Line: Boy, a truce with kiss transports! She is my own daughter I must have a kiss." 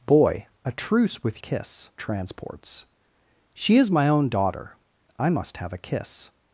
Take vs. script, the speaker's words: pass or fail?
pass